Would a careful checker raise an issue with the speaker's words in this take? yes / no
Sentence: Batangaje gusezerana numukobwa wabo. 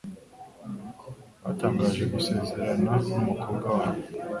no